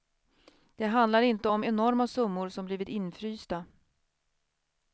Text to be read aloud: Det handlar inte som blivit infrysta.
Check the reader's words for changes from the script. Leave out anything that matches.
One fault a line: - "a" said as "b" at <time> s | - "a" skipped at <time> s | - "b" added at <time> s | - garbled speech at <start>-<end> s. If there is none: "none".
- "om enorma summor" added at 1.5 s